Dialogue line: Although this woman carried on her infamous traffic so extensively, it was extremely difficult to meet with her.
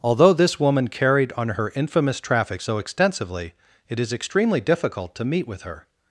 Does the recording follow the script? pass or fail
fail